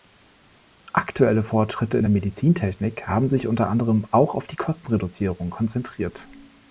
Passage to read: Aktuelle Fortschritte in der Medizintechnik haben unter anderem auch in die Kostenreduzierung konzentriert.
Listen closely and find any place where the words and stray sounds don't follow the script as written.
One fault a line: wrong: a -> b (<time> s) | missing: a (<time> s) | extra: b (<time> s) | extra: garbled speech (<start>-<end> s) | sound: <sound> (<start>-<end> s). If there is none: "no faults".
extra: sich (3.3 s)
wrong: in -> auf (4.3 s)